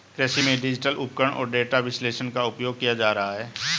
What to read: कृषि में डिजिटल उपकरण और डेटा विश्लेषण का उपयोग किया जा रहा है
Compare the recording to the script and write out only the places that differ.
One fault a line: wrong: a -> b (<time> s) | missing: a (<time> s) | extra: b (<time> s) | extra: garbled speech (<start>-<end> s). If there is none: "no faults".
no faults